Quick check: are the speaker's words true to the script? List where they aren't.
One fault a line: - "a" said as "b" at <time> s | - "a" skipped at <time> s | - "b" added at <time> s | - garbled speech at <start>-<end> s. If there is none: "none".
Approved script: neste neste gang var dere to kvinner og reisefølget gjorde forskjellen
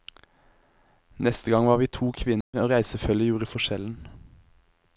- "neste" skipped at 1.5 s
- "dere" said as "vi" at 1.8 s